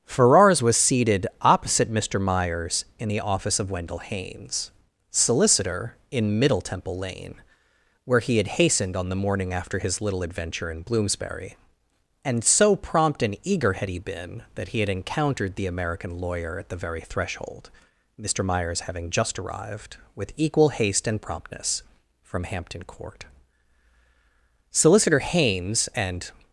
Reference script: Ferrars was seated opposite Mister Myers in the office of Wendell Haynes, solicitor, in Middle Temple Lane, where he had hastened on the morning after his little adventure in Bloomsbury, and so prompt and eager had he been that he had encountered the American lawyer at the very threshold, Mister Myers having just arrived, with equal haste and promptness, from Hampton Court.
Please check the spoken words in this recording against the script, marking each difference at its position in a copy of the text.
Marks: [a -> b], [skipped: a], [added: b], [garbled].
Ferrars was seated opposite Mister Myers in the office of Wendell Haynes, solicitor, in Middle Temple Lane, where he had hastened on the morning after his little adventure in Bloomsbury, and so prompt and eager had he been that he had encountered the American lawyer at the very threshold, Mister Myers having just arrived, with equal haste and promptness, from Hampton Court. [added: Solicitor Haynes and]